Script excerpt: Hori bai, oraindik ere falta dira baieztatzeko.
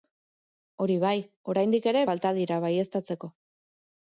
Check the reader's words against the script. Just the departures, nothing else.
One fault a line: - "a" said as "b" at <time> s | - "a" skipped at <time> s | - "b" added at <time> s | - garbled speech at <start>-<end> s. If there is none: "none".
none